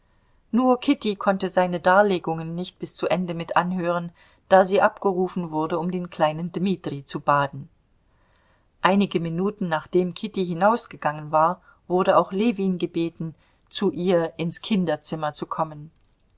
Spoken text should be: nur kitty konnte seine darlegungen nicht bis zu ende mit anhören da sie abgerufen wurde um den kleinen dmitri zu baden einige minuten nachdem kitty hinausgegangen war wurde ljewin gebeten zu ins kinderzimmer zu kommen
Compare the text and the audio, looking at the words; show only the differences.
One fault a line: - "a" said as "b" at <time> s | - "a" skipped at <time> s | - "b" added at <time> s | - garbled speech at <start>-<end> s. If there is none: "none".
- "auch" added at 12.2 s
- "ihr" added at 13.9 s